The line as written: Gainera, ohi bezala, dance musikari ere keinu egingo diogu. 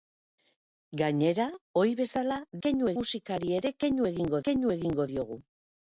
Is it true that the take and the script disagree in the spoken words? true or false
true